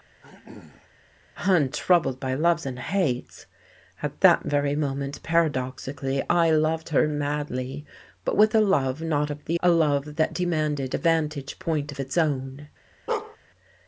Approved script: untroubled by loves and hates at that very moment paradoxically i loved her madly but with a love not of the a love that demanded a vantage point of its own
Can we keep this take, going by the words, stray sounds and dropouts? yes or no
no